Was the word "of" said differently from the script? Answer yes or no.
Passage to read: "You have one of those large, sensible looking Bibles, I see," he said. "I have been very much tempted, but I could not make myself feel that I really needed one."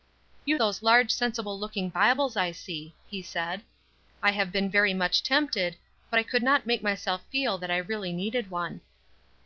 yes